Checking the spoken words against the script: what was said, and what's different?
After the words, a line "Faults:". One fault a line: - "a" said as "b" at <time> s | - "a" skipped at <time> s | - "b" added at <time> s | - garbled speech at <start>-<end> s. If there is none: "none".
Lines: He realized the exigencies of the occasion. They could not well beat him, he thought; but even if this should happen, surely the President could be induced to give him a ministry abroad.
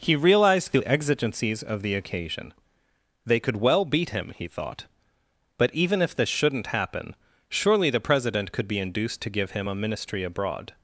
He realized the exigencies of the occasion. They could well beat him, he thought; but even if this shouldn't happen, surely the President could be induced to give him a ministry abroad.
Faults:
- "not" skipped at 3.6 s
- "should" said as "shouldn't" at 6.3 s